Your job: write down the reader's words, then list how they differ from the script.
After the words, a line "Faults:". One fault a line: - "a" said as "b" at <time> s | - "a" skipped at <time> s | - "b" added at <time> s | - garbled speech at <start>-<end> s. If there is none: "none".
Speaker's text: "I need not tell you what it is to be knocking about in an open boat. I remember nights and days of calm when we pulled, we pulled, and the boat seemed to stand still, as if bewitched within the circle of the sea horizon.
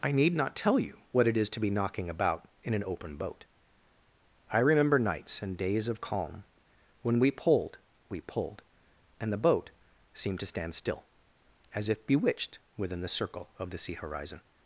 "I need not tell you what it is to be knocking about in an open boat. I remember nights and days of calm when we pulled, we pulled, and the boat seemed to stand still, as if bewitched within the circle of the sea horizon.
Faults:
none